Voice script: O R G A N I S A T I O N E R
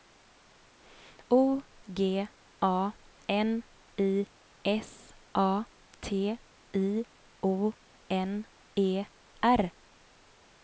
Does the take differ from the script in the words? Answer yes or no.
yes